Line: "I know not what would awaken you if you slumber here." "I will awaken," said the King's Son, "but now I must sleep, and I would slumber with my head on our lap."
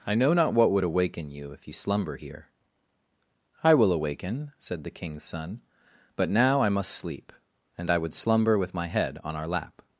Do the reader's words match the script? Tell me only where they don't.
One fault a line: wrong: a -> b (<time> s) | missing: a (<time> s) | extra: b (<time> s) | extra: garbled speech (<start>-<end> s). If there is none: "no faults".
no faults